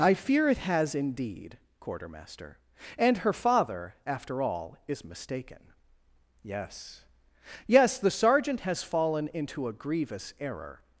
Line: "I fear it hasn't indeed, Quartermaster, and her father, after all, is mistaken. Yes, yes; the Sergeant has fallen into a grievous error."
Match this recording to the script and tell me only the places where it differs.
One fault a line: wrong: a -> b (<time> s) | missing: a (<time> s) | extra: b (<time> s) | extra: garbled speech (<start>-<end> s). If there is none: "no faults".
wrong: hasn't -> has (0.6 s)